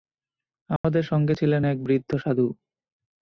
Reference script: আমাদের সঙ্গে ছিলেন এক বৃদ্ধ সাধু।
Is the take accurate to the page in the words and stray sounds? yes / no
no